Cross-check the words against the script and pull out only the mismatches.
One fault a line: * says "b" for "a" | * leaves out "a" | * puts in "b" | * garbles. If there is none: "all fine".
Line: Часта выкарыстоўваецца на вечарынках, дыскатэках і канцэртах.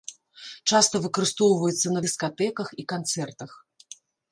* leaves out "вечарынках"